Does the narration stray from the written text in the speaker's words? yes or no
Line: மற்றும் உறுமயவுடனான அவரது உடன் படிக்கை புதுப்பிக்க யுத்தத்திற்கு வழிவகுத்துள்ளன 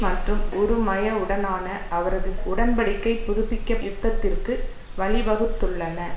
no